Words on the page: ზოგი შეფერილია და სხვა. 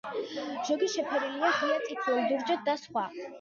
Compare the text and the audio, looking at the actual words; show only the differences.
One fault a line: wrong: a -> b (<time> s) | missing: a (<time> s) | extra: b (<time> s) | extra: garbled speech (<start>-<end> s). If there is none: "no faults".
extra: ღია წითლად ლურჯად (1.6 s)